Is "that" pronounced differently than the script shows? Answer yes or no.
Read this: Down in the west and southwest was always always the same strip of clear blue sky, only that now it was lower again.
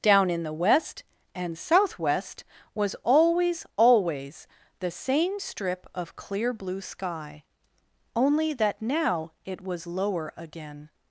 no